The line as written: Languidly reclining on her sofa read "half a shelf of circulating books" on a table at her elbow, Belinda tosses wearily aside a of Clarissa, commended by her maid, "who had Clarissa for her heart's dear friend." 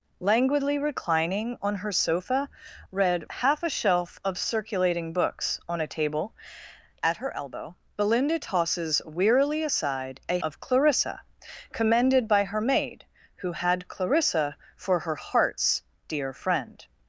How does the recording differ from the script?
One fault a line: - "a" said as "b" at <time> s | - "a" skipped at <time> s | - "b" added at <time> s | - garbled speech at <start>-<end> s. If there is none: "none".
none